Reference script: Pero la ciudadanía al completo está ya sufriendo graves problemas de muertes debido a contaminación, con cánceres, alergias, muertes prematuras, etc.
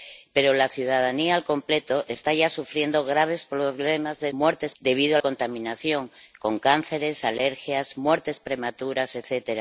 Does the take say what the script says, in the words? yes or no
yes